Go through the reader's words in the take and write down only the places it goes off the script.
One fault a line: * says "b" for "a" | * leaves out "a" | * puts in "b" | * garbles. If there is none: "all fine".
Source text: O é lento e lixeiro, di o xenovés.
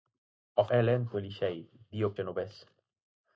all fine